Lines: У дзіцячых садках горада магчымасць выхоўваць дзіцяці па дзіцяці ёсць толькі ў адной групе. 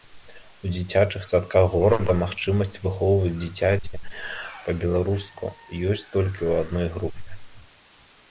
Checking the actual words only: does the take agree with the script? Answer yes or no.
no